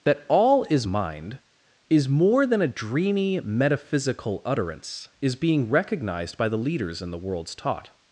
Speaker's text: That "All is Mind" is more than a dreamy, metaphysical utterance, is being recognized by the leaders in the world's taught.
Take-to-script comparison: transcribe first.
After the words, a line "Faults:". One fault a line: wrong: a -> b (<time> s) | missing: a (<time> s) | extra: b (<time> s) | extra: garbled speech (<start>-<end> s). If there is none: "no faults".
That "All is Mind" is more than a dreamy, metaphysical utterance, is being recognized by the leaders in the world's taught.
Faults:
no faults